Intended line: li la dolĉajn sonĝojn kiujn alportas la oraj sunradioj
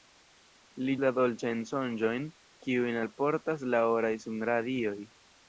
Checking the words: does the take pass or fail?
pass